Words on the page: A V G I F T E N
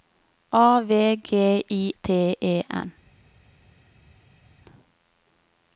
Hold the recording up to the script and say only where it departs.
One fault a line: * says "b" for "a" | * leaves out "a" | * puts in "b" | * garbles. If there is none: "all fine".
* leaves out "F"